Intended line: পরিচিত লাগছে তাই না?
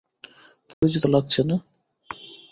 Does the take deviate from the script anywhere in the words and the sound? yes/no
yes